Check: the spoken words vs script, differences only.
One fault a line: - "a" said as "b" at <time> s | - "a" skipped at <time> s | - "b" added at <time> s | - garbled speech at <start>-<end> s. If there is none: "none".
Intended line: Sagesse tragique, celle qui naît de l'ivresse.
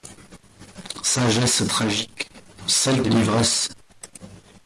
- "qui naît" skipped at 3.0 s